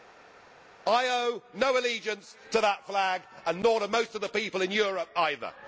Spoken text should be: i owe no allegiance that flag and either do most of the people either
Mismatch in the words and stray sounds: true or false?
true